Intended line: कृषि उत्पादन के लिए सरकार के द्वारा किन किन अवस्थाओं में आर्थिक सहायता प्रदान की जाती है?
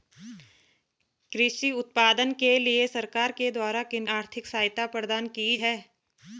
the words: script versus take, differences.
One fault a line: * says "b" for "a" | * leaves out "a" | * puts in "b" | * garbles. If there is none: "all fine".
* leaves out "किन अवस्थाओं में"
* leaves out "जाती"